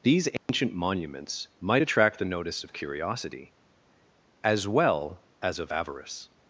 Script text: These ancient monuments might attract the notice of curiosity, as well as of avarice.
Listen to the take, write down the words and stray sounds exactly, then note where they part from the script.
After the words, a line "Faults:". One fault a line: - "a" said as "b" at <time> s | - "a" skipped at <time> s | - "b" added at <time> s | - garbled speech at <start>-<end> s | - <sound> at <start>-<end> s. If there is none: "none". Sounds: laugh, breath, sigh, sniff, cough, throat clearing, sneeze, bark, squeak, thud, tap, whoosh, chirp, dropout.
These ancient monuments might attract the notice of curiosity, as well as of avarice.
Faults:
- dropout at 0.4-0.5 s